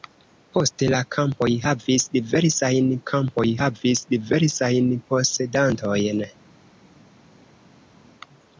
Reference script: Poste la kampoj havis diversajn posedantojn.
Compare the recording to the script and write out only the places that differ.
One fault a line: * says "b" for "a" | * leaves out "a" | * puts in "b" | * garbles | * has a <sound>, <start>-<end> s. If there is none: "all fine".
* puts in "kampoj havis diversajn"